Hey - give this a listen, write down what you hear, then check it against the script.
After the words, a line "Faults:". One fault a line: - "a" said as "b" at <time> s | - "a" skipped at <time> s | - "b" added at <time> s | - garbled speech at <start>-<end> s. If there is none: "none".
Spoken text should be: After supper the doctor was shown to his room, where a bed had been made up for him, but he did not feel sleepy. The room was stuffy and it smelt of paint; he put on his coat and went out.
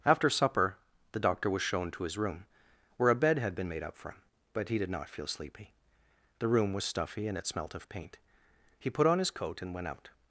After supper the doctor was shown to his room, where a bed had been made up for him, but he did not feel sleepy. The room was stuffy and it smelt of paint; he put on his coat and went out.
Faults:
none